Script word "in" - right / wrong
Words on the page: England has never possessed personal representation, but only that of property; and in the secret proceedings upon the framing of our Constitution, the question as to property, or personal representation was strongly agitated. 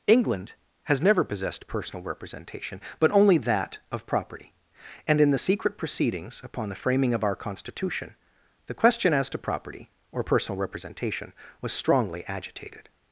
right